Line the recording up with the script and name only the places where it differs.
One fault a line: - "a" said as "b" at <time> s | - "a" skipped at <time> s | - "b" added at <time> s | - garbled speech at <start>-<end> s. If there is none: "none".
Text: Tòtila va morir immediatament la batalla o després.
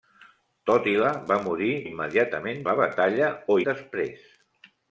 none